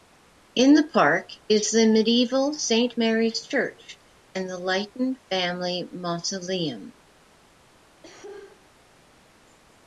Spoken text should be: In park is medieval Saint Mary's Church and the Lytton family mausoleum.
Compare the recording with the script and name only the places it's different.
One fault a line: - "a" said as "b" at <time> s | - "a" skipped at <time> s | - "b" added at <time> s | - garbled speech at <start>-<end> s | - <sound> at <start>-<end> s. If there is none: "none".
- "the" added at 0.7 s
- "the" added at 1.7 s
- cough at 8.0-8.7 s